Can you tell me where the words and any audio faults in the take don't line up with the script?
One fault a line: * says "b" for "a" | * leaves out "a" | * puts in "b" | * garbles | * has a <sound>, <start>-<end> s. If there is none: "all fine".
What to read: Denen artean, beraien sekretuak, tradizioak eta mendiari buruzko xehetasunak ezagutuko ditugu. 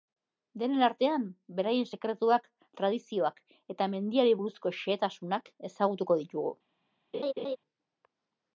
* has a laugh, 7.1-7.6 s